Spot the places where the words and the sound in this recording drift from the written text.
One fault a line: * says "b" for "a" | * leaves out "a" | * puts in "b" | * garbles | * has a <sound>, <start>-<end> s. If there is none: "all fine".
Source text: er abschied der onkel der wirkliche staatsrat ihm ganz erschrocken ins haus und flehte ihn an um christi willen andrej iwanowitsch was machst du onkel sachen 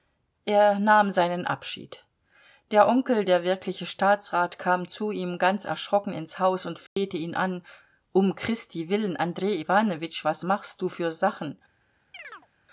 * puts in "nahm seinen"
* puts in "kam zu"
* has a dropout, 6.9-7.0 s
* says "für" for "onkel"
* has a chirp, 12.1-12.5 s